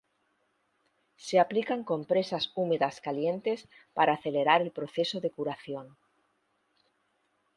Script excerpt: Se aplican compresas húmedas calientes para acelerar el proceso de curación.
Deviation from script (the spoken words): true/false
false